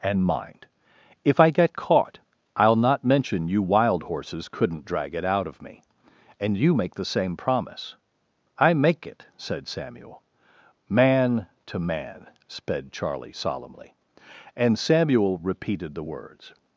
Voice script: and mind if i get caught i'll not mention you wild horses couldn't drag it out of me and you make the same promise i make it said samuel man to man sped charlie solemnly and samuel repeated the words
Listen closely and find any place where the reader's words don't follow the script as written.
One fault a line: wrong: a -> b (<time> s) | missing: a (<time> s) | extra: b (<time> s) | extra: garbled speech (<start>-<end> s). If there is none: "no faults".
no faults